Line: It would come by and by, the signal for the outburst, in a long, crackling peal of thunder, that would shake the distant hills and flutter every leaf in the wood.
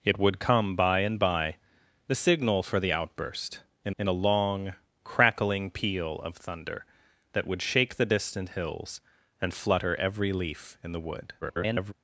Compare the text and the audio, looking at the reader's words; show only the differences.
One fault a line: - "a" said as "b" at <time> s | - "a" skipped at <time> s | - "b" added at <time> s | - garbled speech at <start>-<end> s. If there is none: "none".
- "in" added at 4.0 s
- garbled speech at 11.4-11.9 s